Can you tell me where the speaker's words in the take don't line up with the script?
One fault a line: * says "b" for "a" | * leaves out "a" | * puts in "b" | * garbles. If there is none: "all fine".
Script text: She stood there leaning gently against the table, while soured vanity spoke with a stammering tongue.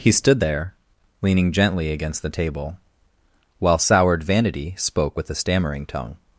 * says "He" for "She"